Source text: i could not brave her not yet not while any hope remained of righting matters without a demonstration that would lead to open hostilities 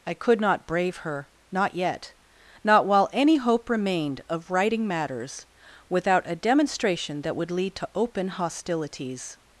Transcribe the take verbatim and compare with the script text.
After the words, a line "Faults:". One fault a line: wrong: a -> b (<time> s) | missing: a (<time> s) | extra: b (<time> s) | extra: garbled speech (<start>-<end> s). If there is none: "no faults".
i could not brave her not yet not while any hope remained of righting matters without a demonstration that would lead to open hostilities
Faults:
no faults